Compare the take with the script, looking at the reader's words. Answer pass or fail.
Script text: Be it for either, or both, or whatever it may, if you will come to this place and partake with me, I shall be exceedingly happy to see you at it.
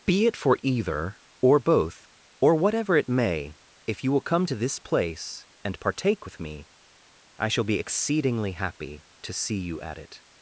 pass